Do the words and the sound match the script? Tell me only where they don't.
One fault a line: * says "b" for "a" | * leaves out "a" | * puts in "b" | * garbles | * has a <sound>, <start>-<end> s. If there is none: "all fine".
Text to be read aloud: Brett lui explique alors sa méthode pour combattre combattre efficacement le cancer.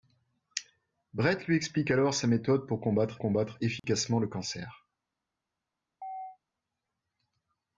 * has a dropout, 3.8-3.8 s
* has a chirp, 6.0-6.4 s